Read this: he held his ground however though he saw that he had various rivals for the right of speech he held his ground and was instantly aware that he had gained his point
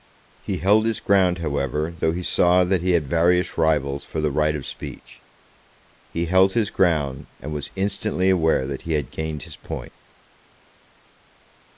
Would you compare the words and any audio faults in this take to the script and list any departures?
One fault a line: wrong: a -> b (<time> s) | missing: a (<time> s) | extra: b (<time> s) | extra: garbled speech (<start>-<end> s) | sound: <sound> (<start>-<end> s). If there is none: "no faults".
no faults